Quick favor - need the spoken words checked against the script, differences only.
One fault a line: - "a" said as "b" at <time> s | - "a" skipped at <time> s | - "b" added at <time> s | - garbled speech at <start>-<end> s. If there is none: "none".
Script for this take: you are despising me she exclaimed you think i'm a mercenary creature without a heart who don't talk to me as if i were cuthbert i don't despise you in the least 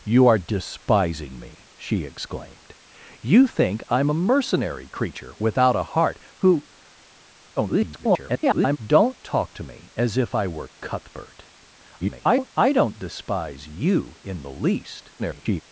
- garbled speech at 7.6-8.8 s
- garbled speech at 12.0-12.5 s
- garbled speech at 15.2-15.6 s